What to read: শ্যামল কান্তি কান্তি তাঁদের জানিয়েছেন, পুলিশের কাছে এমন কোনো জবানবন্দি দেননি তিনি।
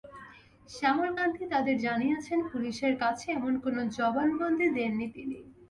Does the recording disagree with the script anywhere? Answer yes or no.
yes